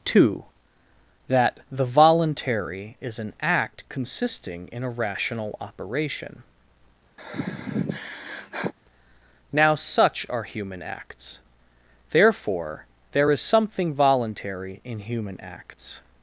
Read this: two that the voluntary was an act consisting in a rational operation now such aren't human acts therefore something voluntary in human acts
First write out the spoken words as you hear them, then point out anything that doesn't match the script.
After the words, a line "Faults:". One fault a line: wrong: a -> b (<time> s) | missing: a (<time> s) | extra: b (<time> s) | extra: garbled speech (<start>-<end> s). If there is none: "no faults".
two that the voluntary is an act consisting in a rational operation now such are human acts therefore there is something voluntary in human acts
Faults:
wrong: was -> is (3.0 s)
wrong: aren't -> are (10.3 s)
extra: there is (13.1 s)